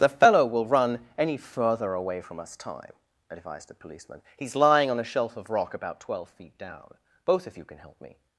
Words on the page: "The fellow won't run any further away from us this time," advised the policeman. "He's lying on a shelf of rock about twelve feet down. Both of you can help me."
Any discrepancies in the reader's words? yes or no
yes